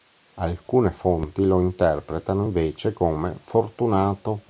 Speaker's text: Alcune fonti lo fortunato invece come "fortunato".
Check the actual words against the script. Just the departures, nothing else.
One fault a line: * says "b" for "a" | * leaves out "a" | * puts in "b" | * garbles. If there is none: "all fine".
* says "interpretano" for "fortunato"